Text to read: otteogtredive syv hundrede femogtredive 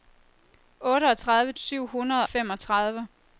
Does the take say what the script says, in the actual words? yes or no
yes